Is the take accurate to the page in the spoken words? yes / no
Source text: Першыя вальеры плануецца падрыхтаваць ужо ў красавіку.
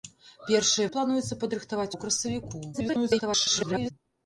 no